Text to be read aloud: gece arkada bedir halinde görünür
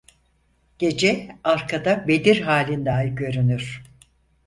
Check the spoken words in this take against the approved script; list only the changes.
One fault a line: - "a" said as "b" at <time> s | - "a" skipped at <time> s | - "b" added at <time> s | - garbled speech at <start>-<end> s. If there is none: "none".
- "ay" added at 2.9 s